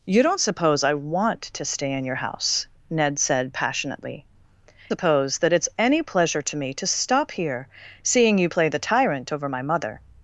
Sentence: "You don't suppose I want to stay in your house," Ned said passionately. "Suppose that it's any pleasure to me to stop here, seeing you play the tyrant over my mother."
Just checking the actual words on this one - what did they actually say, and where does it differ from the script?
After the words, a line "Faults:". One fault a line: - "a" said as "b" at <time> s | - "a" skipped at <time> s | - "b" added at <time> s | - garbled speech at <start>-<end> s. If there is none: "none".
"You don't suppose I want to stay in your house," Ned said passionately. "Suppose that it's any pleasure to me to stop here, seeing you play the tyrant over my mother."
Faults:
none